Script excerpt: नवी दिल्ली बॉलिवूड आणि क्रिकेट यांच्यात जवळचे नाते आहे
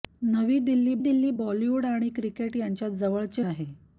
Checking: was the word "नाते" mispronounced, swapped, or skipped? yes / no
yes